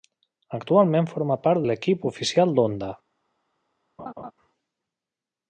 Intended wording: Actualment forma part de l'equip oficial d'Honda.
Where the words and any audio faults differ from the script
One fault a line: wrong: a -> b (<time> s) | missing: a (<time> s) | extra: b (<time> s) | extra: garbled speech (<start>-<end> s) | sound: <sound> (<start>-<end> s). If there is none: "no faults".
missing: de (1.7 s)
sound: laugh (4.0-4.3 s)